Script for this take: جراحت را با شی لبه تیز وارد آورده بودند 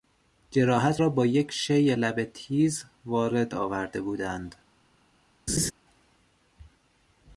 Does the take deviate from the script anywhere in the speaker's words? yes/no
yes